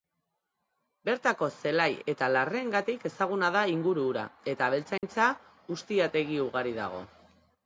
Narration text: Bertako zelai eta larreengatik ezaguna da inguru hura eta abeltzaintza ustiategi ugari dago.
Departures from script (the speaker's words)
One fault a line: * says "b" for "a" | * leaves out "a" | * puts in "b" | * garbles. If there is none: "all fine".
all fine